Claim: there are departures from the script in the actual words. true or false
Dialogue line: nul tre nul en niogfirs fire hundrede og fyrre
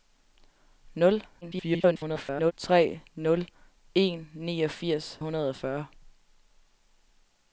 true